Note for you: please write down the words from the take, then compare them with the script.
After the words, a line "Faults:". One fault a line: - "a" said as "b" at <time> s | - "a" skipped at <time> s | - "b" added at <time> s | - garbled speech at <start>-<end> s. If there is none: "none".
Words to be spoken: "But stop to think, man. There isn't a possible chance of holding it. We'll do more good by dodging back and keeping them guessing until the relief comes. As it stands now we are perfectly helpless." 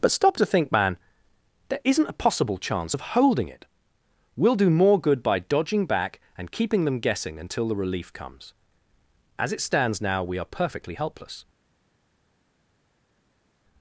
"But stop to think, man. There isn't a possible chance of holding it. We'll do more good by dodging back and keeping them guessing until the relief comes. As it stands now we are perfectly helpless."
Faults:
none